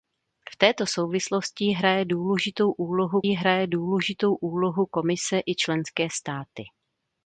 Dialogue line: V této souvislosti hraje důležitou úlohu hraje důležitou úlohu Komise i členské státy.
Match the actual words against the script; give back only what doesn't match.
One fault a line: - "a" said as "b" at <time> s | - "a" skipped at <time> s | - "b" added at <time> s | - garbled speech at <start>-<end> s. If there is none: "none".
none